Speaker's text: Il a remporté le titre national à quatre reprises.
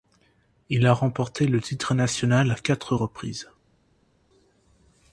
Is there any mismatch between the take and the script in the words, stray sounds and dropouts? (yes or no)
no